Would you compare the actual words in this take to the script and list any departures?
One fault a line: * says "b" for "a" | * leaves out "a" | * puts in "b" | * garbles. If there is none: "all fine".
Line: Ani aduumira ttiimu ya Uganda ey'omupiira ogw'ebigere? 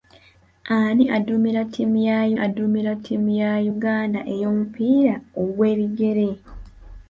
* puts in "aduumira ttiimu ya"